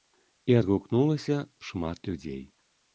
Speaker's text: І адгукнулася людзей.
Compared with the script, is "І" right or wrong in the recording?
right